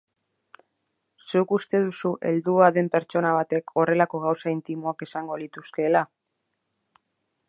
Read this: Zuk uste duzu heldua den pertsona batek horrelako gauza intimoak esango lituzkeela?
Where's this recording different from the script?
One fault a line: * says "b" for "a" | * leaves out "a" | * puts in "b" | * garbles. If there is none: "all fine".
all fine